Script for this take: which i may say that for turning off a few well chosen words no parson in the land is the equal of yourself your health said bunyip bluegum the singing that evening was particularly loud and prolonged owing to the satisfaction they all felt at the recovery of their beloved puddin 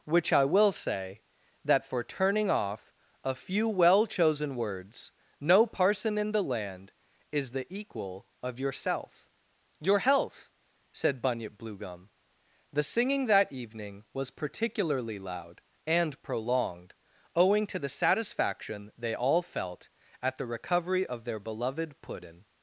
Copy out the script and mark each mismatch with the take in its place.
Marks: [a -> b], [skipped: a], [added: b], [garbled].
which i [may -> will] say that for turning off a few well chosen words no parson in the land is the equal of yourself your health said bunyip bluegum the singing that evening was particularly loud and prolonged owing to the satisfaction they all felt at the recovery of their beloved puddin